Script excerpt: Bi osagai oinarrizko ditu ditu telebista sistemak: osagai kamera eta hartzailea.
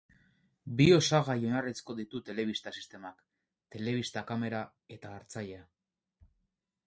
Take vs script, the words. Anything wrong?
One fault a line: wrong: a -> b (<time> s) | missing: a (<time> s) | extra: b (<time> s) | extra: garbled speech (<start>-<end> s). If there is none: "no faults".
missing: ditu (2.2 s)
wrong: osagai -> telebista (3.8 s)